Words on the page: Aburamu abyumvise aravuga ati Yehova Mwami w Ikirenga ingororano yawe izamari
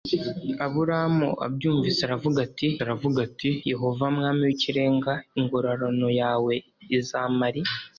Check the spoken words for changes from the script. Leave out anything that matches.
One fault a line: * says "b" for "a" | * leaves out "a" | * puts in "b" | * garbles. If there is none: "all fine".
* puts in "aravuga ati"